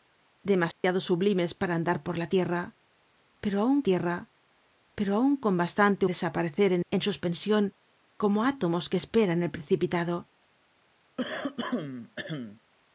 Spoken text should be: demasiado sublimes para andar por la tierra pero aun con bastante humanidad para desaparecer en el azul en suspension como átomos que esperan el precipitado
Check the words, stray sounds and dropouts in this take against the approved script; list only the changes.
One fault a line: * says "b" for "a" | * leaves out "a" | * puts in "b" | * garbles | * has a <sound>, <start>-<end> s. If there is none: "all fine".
* has a dropout, 0.7-0.8 s
* puts in "tierra pero aun"
* leaves out "humanidad para"
* leaves out "el azul"
* has a throat clearing, 11.2-12.6 s